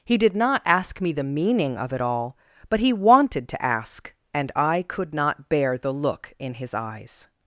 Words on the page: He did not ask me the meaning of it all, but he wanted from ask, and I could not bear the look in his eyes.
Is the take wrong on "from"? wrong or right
wrong